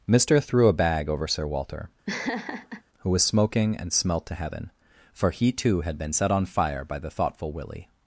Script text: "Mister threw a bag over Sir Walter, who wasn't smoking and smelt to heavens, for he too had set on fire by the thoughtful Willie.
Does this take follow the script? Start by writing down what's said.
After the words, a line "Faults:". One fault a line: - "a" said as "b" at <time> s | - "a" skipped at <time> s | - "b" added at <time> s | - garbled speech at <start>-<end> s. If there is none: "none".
"Mister threw a bag over Sir Walter, who was smoking and smelt to heaven, for he too had been set on fire by the thoughtful Willie.
Faults:
- "wasn't" said as "was" at 3.1 s
- "heavens" said as "heaven" at 4.3 s
- "been" added at 6.0 s